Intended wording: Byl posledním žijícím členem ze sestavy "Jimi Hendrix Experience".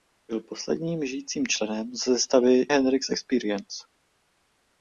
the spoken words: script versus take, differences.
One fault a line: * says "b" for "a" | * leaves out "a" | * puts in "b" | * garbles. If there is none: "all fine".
* leaves out "Jimi"